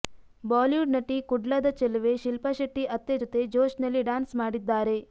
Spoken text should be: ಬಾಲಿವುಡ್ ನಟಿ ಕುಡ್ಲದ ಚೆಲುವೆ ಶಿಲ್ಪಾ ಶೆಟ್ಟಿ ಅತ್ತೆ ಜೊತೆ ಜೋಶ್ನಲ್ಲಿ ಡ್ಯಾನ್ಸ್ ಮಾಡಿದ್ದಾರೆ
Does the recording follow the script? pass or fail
pass